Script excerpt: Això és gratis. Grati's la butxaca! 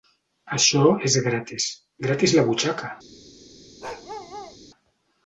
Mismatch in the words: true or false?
false